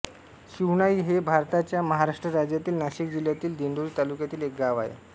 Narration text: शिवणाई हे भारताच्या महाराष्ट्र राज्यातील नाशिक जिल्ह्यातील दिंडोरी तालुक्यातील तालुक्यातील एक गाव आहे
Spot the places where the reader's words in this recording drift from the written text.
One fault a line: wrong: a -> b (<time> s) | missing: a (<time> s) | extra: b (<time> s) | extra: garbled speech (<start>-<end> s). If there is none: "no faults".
missing: तालुक्यातील (4.4 s)